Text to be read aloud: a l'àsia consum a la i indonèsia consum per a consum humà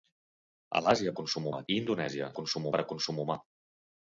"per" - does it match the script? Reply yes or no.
yes